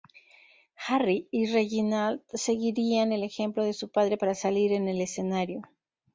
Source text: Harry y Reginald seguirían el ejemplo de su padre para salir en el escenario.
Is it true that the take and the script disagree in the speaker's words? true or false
false